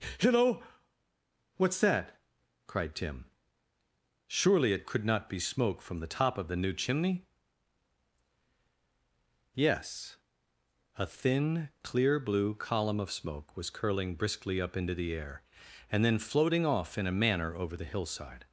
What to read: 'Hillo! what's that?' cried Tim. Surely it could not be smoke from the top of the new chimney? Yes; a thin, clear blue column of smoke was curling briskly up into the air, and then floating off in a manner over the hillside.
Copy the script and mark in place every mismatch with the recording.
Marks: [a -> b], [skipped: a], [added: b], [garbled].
'Hillo! what's that?' cried Tim. Surely it could not be smoke from the top of the new chimney? Yes; a thin, clear blue column of smoke was curling briskly up into the air, and then floating off in a manner over the hillside.